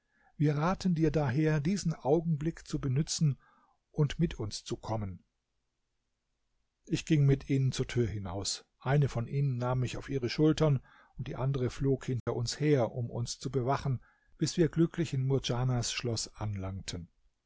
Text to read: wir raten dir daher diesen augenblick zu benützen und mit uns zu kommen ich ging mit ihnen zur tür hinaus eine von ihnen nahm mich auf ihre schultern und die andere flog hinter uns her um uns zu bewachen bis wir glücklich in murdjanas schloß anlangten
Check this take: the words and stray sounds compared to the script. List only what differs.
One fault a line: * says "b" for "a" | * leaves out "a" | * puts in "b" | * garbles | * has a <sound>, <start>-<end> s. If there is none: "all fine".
* has a dropout, 12.2-12.3 s